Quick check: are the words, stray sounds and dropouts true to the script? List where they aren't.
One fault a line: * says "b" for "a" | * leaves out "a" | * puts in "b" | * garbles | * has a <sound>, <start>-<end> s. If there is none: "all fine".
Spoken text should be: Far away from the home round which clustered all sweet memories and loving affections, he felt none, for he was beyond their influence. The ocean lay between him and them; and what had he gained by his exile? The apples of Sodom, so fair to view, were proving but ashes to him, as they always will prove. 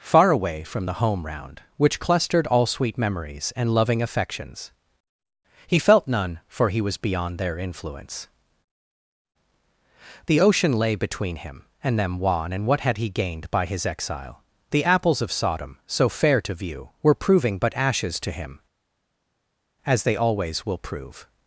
* puts in "wan"